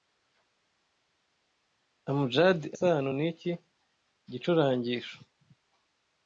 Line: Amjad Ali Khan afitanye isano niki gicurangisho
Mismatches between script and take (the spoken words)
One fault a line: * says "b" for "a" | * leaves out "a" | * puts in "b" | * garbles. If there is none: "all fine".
* leaves out "Ali Khan afitanye"